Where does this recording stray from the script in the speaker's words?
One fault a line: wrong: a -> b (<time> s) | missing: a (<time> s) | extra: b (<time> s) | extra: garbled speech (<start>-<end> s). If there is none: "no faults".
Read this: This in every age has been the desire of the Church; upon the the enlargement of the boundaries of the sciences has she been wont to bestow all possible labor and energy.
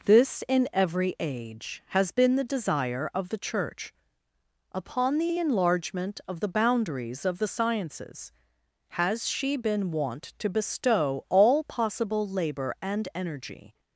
no faults